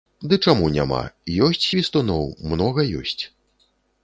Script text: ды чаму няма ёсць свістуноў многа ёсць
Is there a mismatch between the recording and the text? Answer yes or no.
no